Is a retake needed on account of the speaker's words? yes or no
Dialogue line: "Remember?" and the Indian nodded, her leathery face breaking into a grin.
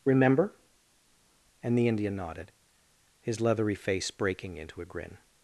yes